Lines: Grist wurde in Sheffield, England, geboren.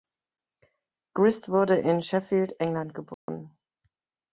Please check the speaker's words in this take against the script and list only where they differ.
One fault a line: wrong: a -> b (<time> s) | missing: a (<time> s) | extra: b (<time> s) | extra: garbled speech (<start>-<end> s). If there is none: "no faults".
no faults